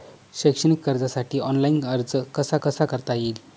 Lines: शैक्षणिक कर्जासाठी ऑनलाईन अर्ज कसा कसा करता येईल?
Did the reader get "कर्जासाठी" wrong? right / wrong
right